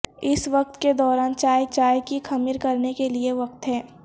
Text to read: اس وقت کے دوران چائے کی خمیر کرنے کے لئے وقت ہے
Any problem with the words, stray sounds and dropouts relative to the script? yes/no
yes